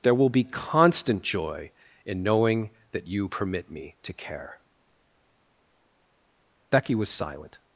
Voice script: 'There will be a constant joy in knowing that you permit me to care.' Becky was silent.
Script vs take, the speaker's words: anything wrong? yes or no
yes